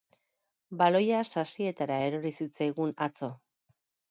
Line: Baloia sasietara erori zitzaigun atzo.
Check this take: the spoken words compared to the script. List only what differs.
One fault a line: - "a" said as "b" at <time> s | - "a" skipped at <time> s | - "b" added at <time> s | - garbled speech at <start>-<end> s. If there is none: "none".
none